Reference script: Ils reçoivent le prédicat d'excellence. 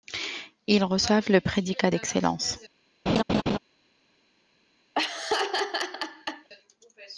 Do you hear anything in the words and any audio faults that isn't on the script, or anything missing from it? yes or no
yes